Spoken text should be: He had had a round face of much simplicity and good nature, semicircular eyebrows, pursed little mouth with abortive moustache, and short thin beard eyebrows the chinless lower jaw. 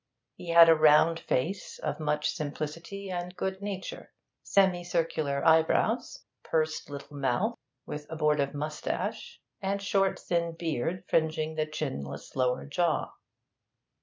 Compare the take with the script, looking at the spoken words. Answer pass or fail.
fail